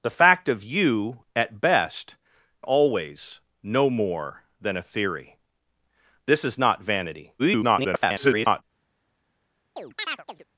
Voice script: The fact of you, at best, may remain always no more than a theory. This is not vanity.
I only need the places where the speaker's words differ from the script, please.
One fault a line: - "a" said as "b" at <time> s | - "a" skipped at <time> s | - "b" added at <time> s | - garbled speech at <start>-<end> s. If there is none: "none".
- "may remain" skipped at 2.1 s
- garbled speech at 7.4-8.6 s